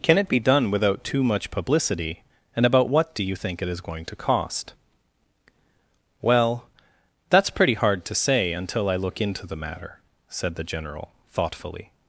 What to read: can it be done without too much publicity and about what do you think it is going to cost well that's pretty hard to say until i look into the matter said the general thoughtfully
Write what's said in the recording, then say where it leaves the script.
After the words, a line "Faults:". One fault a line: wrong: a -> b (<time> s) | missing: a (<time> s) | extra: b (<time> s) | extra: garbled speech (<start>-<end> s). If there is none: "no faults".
can it be done without too much publicity and about what do you think it is going to cost well that's pretty hard to say until i look into the matter said the general thoughtfully
Faults:
no faults